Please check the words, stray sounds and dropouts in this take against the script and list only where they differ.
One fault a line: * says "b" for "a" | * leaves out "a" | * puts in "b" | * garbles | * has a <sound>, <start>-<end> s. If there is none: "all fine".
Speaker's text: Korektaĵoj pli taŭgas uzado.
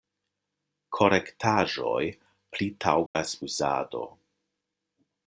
* has a dropout, 3.1-3.2 s